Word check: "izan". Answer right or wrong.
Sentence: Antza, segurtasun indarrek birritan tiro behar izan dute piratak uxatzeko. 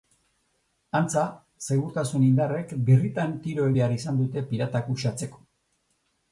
right